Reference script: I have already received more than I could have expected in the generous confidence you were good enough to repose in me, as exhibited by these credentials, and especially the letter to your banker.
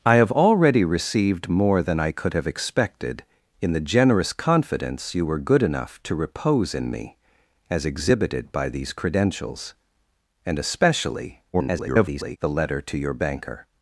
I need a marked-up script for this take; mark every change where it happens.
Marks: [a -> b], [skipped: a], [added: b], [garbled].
I have already received more than I could have expected in the generous confidence you were good enough to repose in me, as exhibited by these credentials, and especially [garbled] the letter to your banker.